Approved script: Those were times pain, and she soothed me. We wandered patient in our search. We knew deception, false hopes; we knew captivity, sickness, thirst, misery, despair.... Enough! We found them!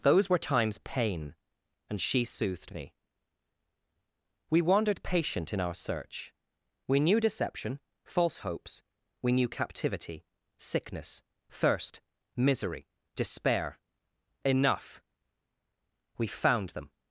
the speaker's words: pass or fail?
pass